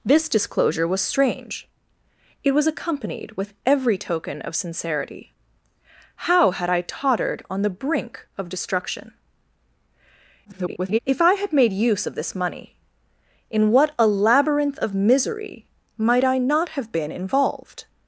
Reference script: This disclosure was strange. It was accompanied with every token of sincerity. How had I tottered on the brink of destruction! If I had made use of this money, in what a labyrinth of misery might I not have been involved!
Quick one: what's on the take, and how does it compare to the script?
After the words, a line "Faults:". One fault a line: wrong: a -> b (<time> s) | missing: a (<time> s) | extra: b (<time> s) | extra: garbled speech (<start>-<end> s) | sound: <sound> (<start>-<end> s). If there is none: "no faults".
This disclosure was strange. It was accompanied with every token of sincerity. How had I tottered on the brink of destruction! [garbled] If I had made use of this money, in what a labyrinth of misery might I not have been involved!
Faults:
extra: garbled speech (10.4-11.0 s)